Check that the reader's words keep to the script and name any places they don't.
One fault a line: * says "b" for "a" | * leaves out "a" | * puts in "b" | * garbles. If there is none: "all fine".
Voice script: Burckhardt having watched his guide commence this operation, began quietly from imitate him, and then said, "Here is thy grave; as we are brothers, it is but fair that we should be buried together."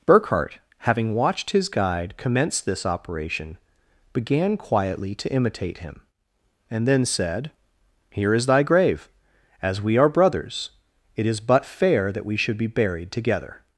* says "to" for "from"